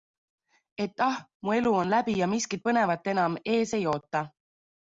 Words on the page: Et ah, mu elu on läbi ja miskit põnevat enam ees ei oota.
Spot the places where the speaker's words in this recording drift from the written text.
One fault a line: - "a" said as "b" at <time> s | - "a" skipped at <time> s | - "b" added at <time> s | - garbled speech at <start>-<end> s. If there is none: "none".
none